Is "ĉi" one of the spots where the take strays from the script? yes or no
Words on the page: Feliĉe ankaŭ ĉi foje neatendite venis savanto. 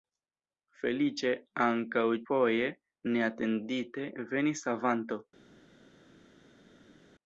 yes